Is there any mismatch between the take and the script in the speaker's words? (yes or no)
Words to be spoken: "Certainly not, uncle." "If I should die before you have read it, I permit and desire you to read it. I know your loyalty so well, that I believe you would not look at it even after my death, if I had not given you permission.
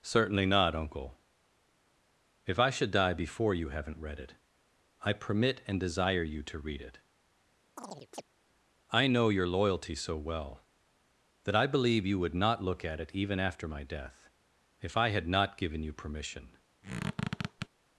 yes